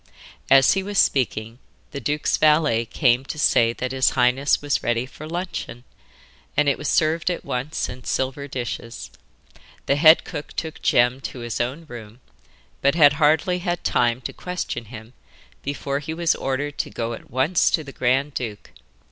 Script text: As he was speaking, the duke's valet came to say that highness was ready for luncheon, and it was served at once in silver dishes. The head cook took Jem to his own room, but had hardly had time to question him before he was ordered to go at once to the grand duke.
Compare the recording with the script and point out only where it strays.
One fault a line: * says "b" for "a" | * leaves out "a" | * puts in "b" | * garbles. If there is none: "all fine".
* puts in "his"